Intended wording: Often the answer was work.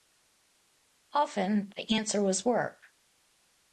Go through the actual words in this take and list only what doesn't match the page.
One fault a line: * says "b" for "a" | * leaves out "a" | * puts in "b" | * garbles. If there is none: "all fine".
all fine